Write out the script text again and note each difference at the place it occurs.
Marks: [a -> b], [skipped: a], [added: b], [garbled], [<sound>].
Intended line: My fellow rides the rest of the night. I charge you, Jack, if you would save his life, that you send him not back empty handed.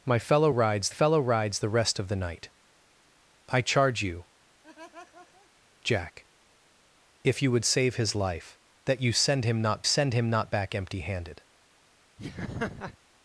My fellow rides [added: fellow rides] the rest of the night. I charge you, [laugh] Jack, if you would save his life, that you send him not [added: send him not] back empty handed. [laugh]